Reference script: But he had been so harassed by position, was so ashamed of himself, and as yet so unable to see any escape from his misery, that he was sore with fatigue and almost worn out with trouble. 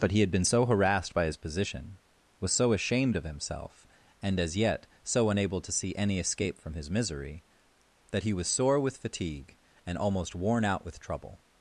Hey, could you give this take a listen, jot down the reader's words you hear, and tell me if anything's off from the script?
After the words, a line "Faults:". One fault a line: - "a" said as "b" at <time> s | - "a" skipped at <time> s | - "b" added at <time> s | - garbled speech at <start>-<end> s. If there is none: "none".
But he had been so harassed by his position, was so ashamed of himself, and as yet so unable to see any escape from his misery, that he was sore with fatigue and almost worn out with trouble.
Faults:
- "his" added at 1.2 s